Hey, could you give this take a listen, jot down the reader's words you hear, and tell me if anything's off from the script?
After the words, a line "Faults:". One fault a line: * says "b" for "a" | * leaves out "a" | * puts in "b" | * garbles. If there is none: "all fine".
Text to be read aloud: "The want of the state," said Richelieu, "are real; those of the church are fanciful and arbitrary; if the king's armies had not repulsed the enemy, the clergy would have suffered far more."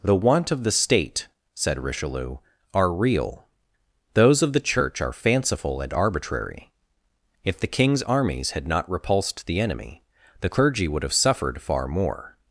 "The want of the state," said Richelieu, "are real; those of the church are fanciful and arbitrary; if the king's armies had not repulsed the enemy, the clergy would have suffered far more."
Faults:
all fine